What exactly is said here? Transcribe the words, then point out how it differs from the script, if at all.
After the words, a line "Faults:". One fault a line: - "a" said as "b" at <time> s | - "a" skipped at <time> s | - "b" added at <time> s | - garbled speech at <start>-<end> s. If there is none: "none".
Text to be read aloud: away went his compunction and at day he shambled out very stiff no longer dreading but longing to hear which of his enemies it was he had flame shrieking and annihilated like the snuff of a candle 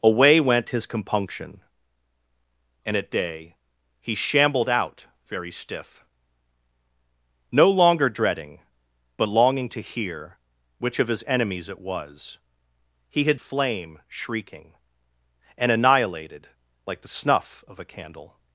away went his compunction and at day he shambled out very stiff no longer dreading but longing to hear which of his enemies it was he had flame shrieking and annihilated like the snuff of a candle
Faults:
none